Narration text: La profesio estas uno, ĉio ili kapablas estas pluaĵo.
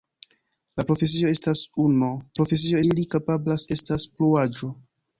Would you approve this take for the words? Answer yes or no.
no